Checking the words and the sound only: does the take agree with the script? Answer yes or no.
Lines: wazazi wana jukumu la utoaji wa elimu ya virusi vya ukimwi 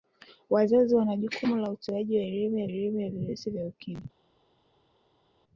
no